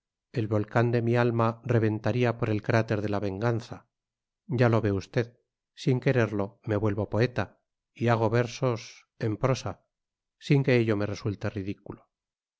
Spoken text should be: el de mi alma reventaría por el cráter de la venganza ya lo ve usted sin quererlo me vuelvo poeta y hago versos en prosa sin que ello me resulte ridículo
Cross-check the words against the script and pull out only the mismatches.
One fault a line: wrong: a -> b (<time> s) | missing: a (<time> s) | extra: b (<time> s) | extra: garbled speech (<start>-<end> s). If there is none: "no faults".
extra: volcán (0.5 s)